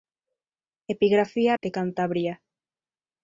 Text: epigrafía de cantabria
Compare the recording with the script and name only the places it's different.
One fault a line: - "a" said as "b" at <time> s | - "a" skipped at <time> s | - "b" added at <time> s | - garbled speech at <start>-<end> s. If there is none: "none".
none